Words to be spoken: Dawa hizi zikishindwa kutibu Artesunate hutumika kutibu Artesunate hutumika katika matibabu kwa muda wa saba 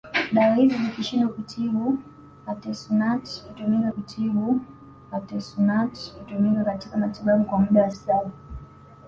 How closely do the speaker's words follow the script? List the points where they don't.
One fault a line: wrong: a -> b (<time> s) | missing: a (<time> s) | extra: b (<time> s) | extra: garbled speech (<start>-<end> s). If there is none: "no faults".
no faults